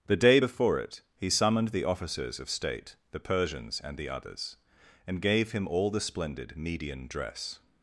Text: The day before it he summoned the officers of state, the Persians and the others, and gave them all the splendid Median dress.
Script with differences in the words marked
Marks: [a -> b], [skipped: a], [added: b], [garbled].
The day before it he summoned the officers of state, the Persians and the others, and gave [them -> him] all the splendid Median dress.